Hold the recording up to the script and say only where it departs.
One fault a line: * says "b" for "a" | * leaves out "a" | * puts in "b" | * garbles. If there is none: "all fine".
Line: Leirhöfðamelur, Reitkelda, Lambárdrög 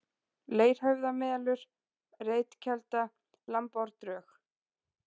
all fine